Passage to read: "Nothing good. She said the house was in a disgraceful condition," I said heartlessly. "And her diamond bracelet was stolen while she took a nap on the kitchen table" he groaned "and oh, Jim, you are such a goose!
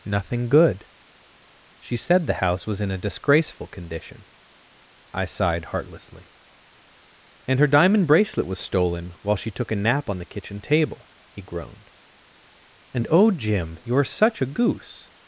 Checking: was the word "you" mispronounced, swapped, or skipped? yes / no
no